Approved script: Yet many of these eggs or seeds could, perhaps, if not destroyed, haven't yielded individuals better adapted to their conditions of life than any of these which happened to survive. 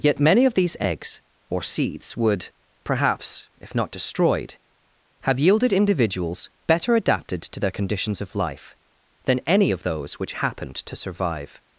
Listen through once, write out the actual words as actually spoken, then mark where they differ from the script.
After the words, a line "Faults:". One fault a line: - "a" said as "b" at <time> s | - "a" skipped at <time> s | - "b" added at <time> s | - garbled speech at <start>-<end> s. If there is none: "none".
Yet many of these eggs or seeds would, perhaps, if not destroyed, have yielded individuals better adapted to their conditions of life than any of those which happened to survive.
Faults:
- "could" said as "would" at 2.2 s
- "haven't" said as "have" at 5.2 s
- "these" said as "those" at 9.8 s